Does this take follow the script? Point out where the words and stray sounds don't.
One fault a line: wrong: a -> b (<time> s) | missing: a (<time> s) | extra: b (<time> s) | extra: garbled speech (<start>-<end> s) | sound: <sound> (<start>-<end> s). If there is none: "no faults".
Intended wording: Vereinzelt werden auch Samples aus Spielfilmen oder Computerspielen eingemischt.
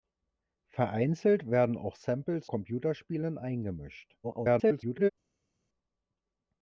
missing: aus Spielfilmen oder (2.5 s)
extra: garbled speech (4.2-5.1 s)